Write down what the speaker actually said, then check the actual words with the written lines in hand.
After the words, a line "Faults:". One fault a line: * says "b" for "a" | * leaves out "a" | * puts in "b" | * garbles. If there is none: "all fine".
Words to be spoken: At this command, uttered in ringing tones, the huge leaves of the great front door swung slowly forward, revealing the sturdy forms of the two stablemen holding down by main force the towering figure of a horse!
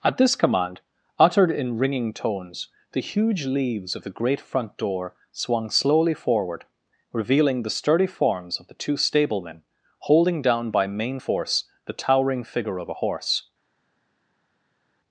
At this command, uttered in ringing tones, the huge leaves of the great front door swung slowly forward, revealing the sturdy forms of the two stablemen holding down by main force the towering figure of a horse!
Faults:
all fine